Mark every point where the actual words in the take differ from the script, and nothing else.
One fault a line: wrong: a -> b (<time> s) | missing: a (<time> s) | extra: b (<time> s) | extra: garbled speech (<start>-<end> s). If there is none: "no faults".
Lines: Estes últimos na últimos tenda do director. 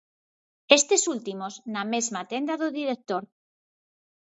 wrong: últimos -> mesma (1.9 s)